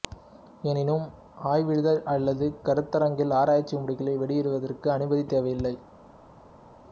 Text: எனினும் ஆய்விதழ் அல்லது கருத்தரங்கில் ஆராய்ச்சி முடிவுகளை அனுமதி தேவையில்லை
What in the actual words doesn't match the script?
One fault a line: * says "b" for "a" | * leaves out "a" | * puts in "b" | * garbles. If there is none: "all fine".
* puts in "வெளியிடுவதற்கு"